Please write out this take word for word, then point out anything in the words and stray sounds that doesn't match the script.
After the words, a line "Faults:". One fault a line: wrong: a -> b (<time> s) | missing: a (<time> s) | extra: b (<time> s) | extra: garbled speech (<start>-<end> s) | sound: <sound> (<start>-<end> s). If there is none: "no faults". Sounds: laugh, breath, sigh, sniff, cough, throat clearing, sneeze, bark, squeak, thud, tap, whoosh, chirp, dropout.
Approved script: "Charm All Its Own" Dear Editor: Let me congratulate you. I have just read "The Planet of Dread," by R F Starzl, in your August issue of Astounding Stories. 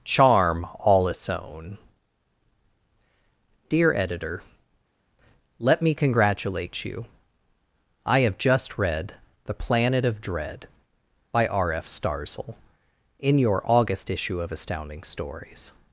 "Charm All Its Own" Dear Editor: Let me congratulate you. I have just read "The Planet of Dread," by R F Starzl, in your August issue of Astounding Stories.
Faults:
no faults